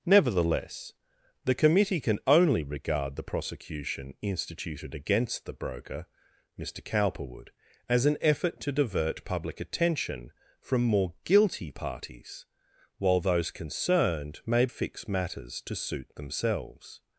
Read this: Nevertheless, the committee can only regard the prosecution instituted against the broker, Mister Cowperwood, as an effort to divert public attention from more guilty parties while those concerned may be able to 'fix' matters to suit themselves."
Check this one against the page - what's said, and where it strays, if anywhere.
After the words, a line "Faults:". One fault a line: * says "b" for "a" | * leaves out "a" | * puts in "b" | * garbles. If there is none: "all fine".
Nevertheless, the committee can only regard the prosecution instituted against the broker, Mister Cowperwood, as an effort to divert public attention from more guilty parties while those concerned may 'fix' matters to suit themselves."
Faults:
* leaves out "be able to"